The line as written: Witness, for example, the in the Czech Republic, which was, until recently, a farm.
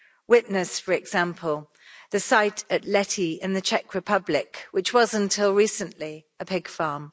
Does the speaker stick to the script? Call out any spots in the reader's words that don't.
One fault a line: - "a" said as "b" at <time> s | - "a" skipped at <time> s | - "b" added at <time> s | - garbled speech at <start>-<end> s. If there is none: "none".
- "site at Lety" added at 2.2 s
- "pig" added at 6.4 s